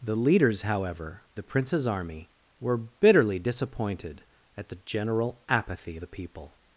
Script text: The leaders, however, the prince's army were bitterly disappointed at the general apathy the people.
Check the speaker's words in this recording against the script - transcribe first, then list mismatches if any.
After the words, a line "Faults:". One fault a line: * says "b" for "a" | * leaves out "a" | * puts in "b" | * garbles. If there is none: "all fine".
The leaders, however, the prince's army were bitterly disappointed at the general apathy the people.
Faults:
all fine